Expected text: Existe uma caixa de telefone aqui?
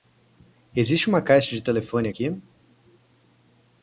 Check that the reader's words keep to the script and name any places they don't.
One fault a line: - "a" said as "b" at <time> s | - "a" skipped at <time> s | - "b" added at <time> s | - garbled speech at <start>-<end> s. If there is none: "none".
none